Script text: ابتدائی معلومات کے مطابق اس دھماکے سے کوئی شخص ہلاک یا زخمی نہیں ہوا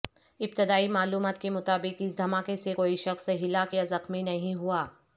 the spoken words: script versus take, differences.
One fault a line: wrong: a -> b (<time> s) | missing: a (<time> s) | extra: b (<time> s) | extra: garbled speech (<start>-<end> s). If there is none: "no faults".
no faults